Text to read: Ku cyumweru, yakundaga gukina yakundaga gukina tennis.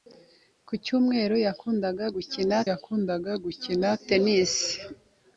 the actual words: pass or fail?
pass